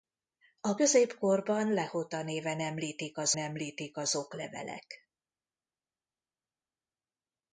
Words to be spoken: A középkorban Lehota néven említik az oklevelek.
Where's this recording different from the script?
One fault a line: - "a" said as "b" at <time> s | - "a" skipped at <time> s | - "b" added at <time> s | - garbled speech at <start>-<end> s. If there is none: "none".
- "említik az" added at 3.4 s